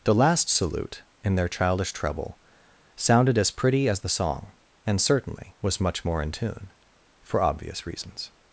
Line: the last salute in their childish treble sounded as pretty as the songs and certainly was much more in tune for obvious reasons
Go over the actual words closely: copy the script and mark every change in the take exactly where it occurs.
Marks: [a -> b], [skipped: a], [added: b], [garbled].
the last salute in their childish treble sounded as pretty as the [songs -> song] and certainly was much more in tune for obvious reasons